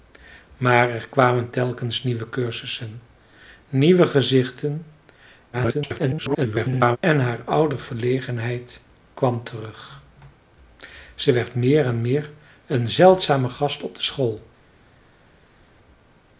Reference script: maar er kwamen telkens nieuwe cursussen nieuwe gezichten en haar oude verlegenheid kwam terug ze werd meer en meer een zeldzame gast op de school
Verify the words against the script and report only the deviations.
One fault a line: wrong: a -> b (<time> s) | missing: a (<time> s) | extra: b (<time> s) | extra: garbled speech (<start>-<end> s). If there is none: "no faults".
extra: garbled speech (5.5-7.0 s)